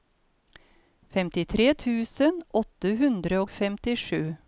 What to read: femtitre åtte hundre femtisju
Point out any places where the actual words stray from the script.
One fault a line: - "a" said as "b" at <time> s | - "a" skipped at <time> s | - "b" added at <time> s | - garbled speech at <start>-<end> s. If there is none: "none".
- "tusen" added at 1.9 s
- "og" added at 3.4 s